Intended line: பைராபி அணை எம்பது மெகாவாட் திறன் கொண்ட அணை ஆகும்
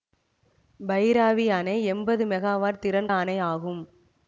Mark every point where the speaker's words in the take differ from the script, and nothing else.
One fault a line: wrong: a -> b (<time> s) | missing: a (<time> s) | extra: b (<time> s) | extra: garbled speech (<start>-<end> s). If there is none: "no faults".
missing: கொண்ட (3.1 s)